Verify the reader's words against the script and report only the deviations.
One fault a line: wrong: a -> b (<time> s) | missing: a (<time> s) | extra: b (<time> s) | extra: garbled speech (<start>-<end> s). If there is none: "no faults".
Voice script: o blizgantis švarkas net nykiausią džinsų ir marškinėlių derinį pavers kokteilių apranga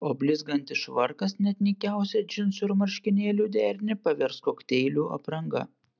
no faults